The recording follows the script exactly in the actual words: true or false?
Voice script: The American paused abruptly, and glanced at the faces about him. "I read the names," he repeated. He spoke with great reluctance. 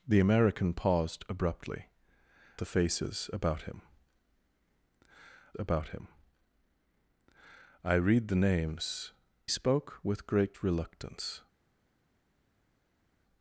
false